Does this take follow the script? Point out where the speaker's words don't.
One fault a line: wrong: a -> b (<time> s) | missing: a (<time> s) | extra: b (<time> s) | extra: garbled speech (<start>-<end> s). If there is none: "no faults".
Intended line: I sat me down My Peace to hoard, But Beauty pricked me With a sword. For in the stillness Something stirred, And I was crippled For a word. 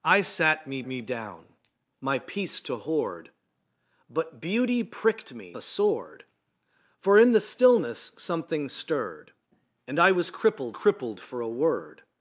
extra: me (0.8 s)
missing: With (5.6 s)
extra: crippled (10.7 s)